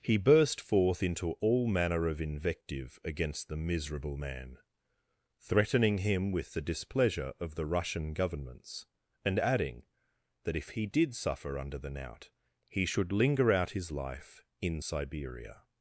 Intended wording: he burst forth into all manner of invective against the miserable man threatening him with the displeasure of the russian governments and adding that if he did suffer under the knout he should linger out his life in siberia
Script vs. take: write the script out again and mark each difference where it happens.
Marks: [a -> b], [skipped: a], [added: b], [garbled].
he burst forth into all manner of invective against the miserable man threatening him with the displeasure of the russian governments and adding that if he did suffer under the knout he should linger out his life in siberia